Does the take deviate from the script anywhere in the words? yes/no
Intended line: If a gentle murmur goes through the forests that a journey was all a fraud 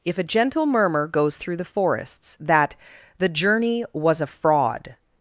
yes